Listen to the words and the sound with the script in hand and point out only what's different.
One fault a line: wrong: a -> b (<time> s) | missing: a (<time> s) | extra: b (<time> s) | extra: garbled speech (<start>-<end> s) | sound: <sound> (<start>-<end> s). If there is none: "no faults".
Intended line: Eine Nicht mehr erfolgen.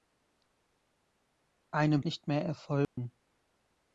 sound: dropout (2.8-3.0 s)